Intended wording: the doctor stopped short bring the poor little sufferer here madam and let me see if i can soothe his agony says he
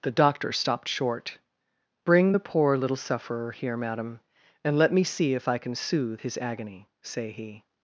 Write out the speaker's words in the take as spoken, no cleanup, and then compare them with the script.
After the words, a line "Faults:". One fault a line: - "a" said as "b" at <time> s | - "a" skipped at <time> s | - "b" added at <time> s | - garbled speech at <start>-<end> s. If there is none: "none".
the doctor stopped short bring the poor little sufferer here madam and let me see if i can soothe his agony say he
Faults:
- "says" said as "say" at 7.0 s